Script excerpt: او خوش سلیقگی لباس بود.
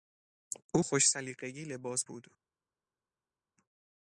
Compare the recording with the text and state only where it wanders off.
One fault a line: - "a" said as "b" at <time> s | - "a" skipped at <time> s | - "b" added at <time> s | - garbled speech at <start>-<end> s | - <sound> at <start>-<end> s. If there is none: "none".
none